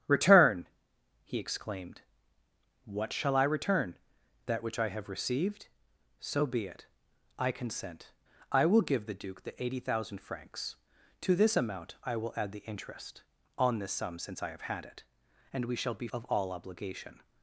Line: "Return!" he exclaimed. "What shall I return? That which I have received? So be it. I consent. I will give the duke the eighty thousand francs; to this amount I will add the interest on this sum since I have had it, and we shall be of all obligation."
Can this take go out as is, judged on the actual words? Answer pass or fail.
pass